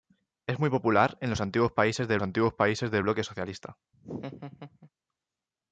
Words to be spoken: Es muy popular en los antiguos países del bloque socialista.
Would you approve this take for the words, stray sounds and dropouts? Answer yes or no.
no